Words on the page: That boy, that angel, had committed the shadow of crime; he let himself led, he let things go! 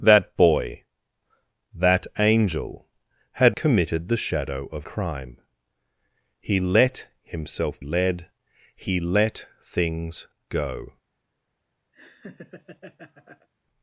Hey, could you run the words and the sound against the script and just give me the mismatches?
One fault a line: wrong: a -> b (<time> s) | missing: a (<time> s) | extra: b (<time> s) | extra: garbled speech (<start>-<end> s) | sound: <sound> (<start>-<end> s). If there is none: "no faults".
sound: laugh (11.9-13.5 s)